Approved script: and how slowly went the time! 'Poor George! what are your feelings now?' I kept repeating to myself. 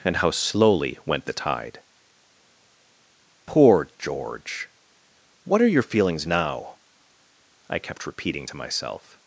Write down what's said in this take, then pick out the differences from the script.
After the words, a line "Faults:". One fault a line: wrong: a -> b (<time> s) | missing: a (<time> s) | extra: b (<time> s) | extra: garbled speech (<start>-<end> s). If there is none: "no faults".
and how slowly went the tide! 'Poor George! what are your feelings now?' I kept repeating to myself.
Faults:
wrong: time -> tide (1.3 s)